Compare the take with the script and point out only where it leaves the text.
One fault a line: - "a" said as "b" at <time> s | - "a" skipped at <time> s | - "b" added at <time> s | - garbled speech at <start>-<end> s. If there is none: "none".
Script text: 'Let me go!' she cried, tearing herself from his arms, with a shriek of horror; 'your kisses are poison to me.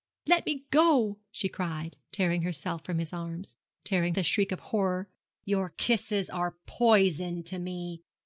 - "with" said as "tearing" at 3.8 s